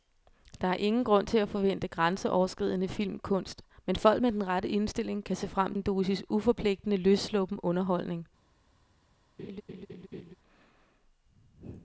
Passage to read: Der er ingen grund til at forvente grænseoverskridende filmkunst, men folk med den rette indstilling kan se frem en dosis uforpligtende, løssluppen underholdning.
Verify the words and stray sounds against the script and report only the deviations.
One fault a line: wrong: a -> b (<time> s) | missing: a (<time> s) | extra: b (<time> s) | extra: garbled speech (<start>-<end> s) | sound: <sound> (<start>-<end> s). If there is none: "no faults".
sound: laugh (9.4-10.3 s)